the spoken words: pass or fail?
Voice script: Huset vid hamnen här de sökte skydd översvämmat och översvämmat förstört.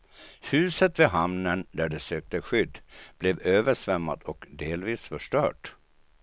fail